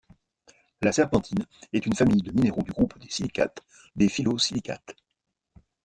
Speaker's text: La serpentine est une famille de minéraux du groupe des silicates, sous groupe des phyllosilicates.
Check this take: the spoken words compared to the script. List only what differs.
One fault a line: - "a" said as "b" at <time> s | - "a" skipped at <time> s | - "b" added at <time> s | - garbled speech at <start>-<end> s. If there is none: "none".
- "sous groupe" skipped at 3.6 s